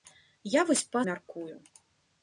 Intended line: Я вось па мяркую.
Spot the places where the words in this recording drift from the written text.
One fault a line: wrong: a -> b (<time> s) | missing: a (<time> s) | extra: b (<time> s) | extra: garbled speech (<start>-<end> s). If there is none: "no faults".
no faults